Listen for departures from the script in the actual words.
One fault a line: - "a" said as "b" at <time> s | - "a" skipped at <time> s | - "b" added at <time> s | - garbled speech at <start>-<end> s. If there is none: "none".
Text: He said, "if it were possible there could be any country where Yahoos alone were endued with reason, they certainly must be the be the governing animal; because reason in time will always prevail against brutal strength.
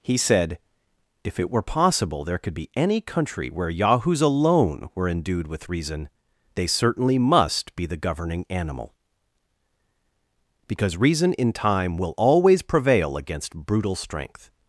- "be the" skipped at 8.0 s